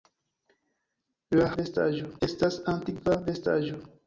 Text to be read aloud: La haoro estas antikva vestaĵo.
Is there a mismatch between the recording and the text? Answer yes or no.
yes